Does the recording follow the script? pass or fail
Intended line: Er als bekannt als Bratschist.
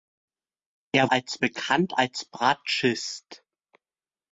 pass